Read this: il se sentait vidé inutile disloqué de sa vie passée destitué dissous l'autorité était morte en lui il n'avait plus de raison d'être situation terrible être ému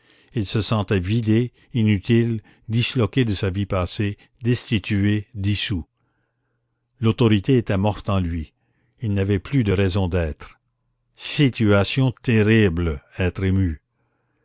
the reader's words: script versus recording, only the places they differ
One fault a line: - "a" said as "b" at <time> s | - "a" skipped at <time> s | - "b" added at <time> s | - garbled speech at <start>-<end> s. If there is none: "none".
none